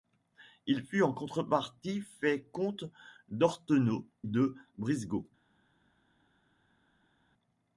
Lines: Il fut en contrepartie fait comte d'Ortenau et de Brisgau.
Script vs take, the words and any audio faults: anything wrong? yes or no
yes